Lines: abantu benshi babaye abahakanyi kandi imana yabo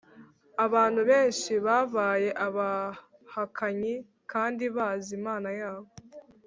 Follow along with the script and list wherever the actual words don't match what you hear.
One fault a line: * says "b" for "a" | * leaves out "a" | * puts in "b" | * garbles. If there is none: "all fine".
* puts in "bazi"